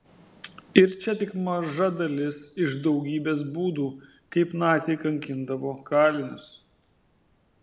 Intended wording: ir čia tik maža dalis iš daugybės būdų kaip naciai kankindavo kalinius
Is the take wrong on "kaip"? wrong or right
right